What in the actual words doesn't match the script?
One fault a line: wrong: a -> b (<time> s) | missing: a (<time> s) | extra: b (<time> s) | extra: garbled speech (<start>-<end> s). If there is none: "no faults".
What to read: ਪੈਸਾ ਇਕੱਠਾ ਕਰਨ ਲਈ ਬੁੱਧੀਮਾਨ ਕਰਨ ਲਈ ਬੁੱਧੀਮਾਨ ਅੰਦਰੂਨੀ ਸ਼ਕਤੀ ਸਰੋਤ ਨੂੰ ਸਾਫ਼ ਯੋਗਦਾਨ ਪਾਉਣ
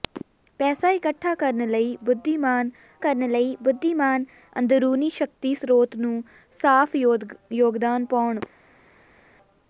no faults